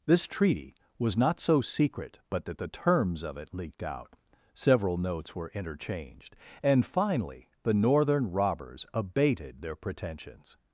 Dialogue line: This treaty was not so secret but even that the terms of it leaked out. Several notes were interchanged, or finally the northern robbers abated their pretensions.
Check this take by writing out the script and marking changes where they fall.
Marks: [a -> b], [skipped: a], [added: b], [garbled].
This treaty was not so secret but [skipped: even] that the terms of it leaked out. Several notes were interchanged, [or -> and] finally the northern robbers abated their pretensions.